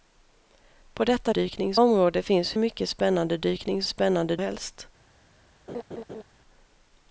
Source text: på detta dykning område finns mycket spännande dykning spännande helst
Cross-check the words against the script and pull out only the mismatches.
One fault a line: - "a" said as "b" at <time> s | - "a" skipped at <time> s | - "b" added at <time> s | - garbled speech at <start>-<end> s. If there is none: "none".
none